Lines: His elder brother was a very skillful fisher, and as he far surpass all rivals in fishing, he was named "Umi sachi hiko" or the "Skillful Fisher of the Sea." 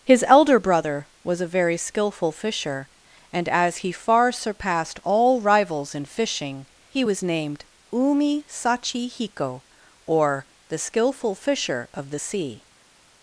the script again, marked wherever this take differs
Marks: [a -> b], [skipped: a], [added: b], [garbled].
His elder brother was a very skillful fisher, and as he far [surpass -> surpassed] all rivals in fishing, he was named "Umi sachi hiko" or the "Skillful Fisher of the Sea."